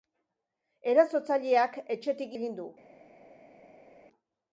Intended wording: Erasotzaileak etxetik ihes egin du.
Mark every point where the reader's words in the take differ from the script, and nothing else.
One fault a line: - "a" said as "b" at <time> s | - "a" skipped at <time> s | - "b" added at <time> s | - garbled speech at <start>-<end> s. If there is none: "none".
- "ihes" skipped at 2.4 s